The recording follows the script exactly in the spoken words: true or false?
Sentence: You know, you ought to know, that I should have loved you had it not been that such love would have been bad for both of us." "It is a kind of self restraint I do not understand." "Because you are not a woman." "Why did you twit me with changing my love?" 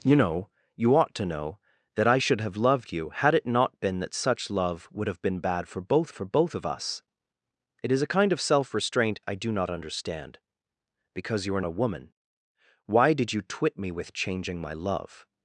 false